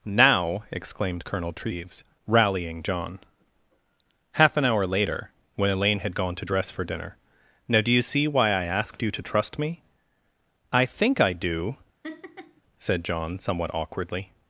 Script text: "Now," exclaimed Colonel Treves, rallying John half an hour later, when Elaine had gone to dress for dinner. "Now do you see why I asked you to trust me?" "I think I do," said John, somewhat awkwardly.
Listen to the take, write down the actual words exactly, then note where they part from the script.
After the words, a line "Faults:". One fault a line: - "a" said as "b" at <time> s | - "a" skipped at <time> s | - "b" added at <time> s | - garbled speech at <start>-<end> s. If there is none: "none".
"Now," exclaimed Colonel Treves, rallying John half an hour later, when Elaine had gone to dress for dinner. "Now do you see why I asked you to trust me?" "I think I do," said John, somewhat awkwardly.
Faults:
none